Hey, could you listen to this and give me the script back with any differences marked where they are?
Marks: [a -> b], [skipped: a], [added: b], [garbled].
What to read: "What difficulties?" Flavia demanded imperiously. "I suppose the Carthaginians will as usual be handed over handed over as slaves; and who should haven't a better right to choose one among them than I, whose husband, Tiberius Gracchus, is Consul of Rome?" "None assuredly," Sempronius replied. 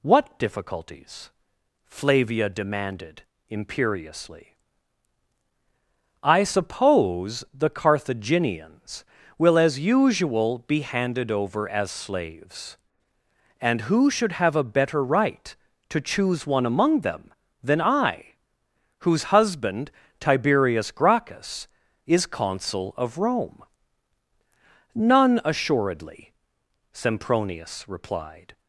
"What difficulties?" Flavia demanded imperiously. "I suppose the Carthaginians will as usual be handed over [skipped: handed over] as slaves; and who should [haven't -> have] a better right to choose one among them than I, whose husband, Tiberius Gracchus, is Consul of Rome?" "None assuredly," Sempronius replied.